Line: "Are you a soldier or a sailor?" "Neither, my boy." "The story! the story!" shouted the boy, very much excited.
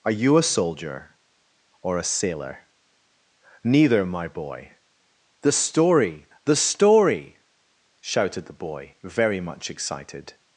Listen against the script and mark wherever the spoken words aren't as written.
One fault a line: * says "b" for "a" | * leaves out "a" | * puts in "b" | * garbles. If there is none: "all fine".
all fine